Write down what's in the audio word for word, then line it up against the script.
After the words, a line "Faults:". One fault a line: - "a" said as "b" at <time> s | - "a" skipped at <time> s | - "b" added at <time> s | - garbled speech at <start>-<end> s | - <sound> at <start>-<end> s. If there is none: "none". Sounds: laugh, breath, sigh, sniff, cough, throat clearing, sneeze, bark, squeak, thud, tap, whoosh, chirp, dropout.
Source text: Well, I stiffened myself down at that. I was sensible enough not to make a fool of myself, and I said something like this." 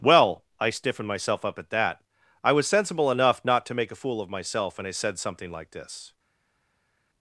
Well, I stiffened myself up at that. I was sensible enough not to make a fool of myself, and I said something like this."
Faults:
- "down" said as "up" at 1.4 s